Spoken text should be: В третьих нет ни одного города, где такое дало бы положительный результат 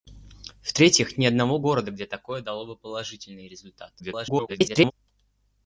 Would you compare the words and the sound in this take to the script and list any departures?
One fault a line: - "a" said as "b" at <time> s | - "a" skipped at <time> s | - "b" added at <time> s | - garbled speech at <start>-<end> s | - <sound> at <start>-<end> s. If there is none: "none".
- "нет" skipped at 1.1 s
- garbled speech at 4.0-4.9 s